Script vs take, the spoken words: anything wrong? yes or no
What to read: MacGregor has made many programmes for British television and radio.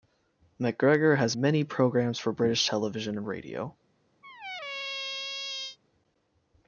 yes